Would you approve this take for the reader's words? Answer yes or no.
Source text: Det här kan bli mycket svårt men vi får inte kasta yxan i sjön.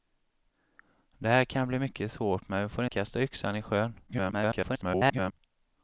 no